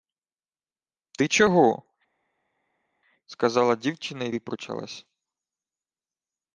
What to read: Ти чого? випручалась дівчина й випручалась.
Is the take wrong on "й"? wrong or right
right